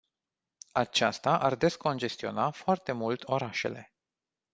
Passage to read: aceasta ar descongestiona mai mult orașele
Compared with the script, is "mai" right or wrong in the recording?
wrong